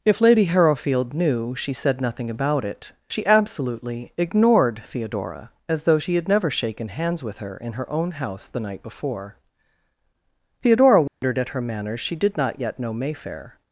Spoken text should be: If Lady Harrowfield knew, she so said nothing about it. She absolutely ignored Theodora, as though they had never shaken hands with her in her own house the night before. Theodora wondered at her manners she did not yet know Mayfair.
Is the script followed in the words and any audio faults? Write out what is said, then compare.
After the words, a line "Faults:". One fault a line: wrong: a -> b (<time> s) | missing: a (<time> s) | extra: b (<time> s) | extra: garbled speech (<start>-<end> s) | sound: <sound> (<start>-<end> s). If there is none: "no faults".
If Lady Harrowfield knew, she said nothing about it. She absolutely ignored Theodora, as though she had never shaken hands with her in her own house the night before. Theodora wondered at her manners she did not yet know Mayfair.
Faults:
missing: so (1.7 s)
wrong: they -> she (6.0 s)
sound: dropout (11.1-11.2 s)